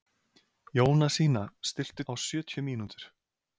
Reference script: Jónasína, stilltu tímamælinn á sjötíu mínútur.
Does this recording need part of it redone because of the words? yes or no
yes